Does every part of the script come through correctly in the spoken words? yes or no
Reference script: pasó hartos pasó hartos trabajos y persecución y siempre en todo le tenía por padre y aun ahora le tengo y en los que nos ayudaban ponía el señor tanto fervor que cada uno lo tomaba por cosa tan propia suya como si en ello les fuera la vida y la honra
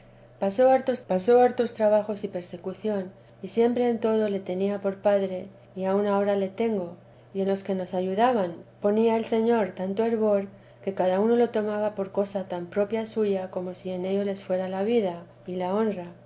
yes